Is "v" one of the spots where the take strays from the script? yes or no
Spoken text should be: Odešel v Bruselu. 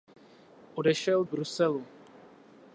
no